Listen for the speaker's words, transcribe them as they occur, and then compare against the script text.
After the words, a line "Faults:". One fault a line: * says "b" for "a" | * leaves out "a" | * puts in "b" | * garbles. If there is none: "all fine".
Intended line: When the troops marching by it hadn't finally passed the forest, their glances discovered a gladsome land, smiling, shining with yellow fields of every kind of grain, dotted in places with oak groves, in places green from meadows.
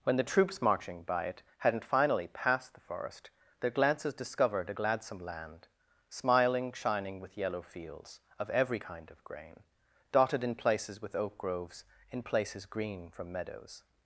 When the troops marching by it hadn't finally passed the forest, their glances discovered a gladsome land, smiling, shining with yellow fields of every kind of grain, dotted in places with oak groves, in places green from meadows.
Faults:
all fine